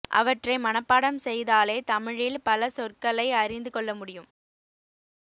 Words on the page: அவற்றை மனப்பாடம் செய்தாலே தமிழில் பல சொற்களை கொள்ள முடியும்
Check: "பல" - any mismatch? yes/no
no